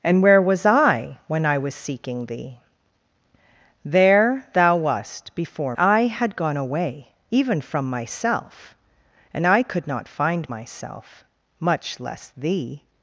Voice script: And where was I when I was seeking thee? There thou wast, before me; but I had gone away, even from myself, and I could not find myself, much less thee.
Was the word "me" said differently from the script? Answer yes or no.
yes